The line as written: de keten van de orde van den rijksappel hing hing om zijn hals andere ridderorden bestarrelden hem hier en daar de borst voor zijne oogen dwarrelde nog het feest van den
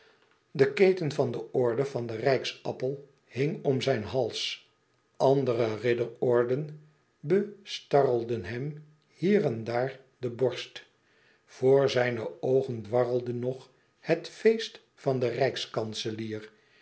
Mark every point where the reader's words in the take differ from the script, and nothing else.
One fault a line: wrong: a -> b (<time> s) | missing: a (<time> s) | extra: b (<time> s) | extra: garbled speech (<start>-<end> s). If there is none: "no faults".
missing: hing (3.6 s)